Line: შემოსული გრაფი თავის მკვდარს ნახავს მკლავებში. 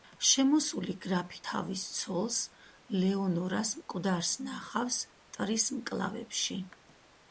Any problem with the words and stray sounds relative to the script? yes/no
yes